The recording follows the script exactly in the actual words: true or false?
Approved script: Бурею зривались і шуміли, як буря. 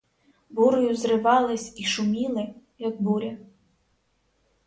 true